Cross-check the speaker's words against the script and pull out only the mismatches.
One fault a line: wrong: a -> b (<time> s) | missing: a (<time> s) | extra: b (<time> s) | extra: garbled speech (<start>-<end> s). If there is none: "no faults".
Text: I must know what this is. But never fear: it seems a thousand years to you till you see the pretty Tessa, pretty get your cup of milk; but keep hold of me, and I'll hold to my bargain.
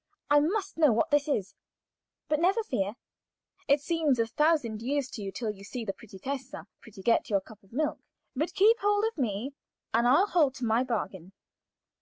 no faults